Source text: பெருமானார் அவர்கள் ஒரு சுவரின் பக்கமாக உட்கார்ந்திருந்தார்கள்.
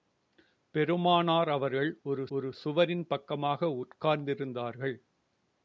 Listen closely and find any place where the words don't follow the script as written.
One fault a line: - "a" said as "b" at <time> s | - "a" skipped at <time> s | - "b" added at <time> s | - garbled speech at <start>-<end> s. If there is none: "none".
- "ஒரு" added at 2.3 s